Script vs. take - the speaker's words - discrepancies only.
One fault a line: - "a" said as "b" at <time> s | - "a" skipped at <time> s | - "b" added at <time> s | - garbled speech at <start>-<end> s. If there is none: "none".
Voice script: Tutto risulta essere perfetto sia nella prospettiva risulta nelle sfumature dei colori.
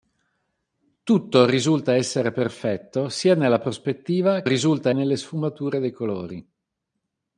none